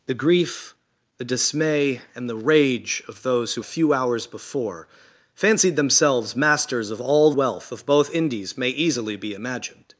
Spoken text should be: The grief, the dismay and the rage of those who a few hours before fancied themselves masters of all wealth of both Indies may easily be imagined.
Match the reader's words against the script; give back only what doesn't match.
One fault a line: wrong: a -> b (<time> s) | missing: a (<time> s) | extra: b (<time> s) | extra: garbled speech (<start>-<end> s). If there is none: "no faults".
no faults